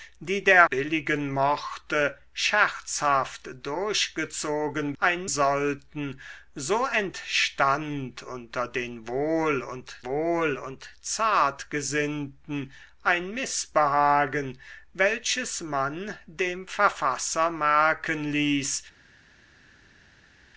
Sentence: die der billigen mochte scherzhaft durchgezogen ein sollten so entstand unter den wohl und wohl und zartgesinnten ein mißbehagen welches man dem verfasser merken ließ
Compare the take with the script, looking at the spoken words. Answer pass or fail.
pass